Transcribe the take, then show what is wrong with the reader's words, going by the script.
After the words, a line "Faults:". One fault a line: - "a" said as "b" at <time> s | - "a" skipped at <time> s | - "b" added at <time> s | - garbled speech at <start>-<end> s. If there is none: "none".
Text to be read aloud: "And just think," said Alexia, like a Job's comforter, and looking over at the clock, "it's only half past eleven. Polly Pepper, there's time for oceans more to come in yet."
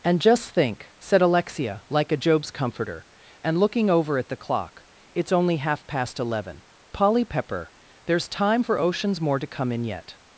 "And just think," said Alexia, like a Job's comforter, and looking over at the clock, "it's only half past eleven. Polly Pepper, there's time for oceans more to come in yet."
Faults:
none